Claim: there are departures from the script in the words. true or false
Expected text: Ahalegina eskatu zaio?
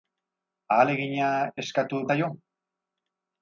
false